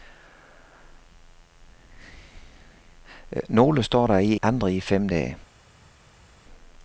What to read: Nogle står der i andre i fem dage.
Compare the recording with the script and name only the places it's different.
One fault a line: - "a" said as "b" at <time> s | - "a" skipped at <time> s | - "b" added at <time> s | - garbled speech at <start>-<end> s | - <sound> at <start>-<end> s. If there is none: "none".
none